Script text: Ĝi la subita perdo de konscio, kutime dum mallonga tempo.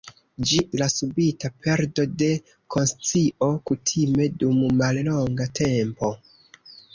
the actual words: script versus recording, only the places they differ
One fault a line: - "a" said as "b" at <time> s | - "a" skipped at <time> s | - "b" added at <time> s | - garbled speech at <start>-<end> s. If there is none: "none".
none